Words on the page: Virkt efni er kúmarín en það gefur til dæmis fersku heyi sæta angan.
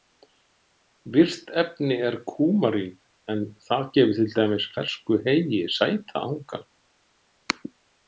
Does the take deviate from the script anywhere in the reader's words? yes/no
no